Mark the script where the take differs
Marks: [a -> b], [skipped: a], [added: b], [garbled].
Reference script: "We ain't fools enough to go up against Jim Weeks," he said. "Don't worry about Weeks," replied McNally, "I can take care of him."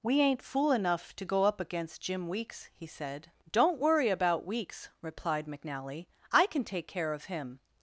"We ain't [fools -> fool] enough to go up against Jim Weeks," he said. "Don't worry about Weeks," replied McNally, "I can take care of him."